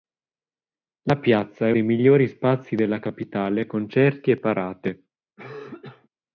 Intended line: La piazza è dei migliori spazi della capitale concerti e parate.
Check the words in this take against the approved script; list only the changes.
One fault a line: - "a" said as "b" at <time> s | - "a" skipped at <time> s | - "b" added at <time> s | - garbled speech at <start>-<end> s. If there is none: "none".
none